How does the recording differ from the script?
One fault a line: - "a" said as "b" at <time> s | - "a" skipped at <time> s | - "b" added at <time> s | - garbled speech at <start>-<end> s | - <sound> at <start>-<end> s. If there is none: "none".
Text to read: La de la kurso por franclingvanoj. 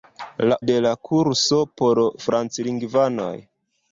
none